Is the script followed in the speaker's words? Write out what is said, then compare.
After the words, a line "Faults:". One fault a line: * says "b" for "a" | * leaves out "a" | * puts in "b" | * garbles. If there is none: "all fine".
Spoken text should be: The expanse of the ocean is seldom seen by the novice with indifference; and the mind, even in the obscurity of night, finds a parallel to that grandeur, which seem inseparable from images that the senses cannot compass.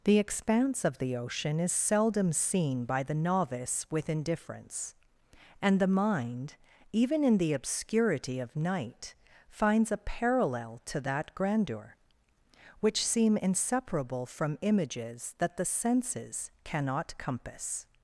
The expanse of the ocean is seldom seen by the novice with indifference; and the mind, even in the obscurity of night, finds a parallel to that grandeur, which seem inseparable from images that the senses cannot compass.
Faults:
all fine